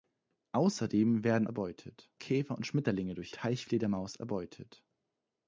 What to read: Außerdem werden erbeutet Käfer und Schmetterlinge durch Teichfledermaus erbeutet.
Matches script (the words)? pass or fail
pass